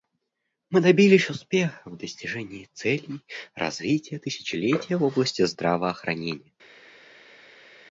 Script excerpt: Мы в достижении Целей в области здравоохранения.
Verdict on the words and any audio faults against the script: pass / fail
fail